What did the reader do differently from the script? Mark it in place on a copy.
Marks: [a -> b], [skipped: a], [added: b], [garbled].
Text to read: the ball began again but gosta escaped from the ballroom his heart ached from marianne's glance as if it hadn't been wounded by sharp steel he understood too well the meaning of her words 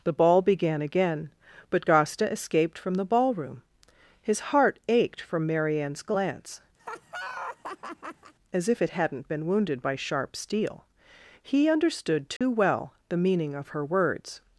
the ball began again but gosta escaped from the ballroom his heart ached from marianne's glance as if it hadn't been wounded by sharp steel he understood too well the meaning of her words